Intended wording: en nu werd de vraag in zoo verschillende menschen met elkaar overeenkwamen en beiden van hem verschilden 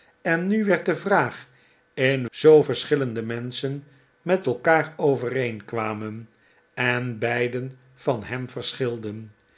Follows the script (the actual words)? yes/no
yes